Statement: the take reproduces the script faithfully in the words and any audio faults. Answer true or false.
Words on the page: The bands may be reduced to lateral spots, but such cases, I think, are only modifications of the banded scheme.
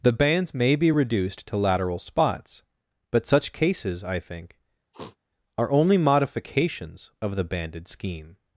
false